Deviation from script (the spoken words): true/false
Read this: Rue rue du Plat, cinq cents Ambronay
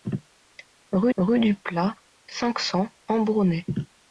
false